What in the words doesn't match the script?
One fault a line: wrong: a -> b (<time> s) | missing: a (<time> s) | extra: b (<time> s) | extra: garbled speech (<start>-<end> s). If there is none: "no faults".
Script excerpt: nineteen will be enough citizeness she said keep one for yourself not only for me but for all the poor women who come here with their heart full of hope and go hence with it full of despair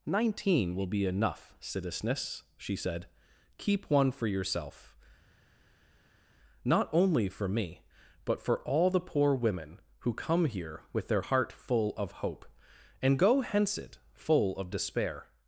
missing: with (13.8 s)